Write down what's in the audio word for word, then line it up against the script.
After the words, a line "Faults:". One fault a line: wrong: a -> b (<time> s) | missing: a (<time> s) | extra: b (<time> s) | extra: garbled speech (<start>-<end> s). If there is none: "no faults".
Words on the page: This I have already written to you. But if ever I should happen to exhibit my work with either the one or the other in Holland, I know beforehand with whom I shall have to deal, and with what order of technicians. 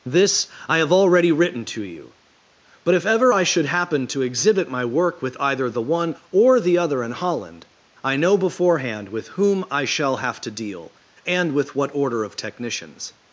This I have already written to you. But if ever I should happen to exhibit my work with either the one or the other in Holland, I know beforehand with whom I shall have to deal, and with what order of technicians.
Faults:
no faults